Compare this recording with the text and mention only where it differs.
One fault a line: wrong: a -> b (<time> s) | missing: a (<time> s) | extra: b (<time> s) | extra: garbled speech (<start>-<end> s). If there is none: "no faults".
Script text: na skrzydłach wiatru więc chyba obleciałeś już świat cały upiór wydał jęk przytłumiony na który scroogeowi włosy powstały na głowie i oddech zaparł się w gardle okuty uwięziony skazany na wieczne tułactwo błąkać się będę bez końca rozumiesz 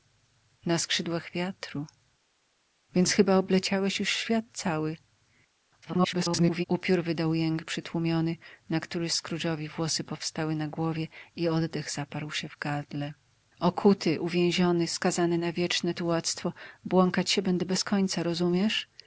extra: garbled speech (5.8-6.6 s)